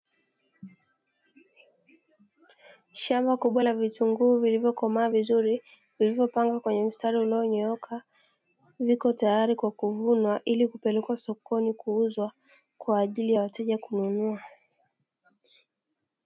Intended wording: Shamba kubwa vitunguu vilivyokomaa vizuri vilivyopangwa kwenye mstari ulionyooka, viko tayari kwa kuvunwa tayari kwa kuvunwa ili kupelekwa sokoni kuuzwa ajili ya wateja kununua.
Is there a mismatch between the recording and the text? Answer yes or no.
yes